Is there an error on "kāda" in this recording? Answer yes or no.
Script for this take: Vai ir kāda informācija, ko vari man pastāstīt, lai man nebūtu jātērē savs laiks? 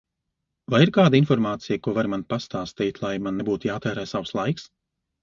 no